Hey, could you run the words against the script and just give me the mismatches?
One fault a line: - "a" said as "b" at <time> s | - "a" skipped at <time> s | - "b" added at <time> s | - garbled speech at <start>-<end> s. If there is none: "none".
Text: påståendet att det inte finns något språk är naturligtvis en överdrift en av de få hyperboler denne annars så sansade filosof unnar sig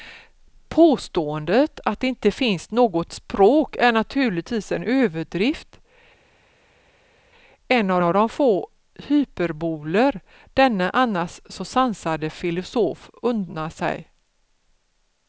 - "av" added at 8.0 s